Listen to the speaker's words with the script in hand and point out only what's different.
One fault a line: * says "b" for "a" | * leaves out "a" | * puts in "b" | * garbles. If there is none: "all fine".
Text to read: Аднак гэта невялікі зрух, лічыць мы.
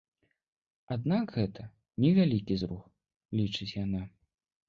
* says "яна" for "мы"